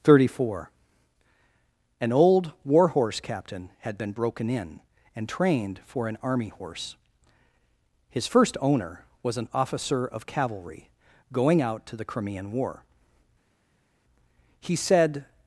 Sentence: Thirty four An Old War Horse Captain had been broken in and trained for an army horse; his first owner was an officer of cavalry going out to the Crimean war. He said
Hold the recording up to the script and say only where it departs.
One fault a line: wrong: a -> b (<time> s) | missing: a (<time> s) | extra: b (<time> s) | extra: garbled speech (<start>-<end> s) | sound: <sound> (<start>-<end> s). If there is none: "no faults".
no faults